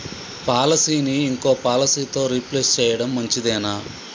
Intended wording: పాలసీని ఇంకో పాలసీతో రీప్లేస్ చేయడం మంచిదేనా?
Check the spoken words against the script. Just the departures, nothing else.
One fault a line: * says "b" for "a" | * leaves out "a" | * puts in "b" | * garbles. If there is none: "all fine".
all fine